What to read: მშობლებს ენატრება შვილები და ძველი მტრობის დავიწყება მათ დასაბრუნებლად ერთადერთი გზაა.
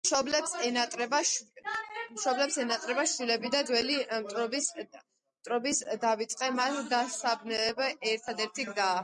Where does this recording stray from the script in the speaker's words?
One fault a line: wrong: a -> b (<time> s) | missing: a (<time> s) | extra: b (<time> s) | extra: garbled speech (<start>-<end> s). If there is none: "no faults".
no faults